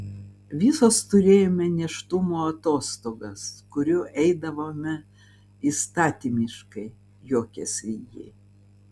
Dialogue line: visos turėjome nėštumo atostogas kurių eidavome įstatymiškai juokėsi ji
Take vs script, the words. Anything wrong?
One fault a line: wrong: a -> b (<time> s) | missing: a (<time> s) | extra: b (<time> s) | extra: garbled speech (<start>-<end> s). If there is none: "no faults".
no faults